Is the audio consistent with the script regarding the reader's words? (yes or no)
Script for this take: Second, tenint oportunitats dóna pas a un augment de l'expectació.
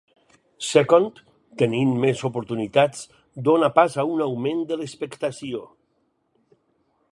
no